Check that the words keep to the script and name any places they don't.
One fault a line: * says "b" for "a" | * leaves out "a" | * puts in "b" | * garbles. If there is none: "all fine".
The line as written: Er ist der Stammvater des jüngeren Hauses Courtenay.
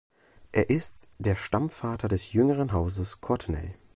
all fine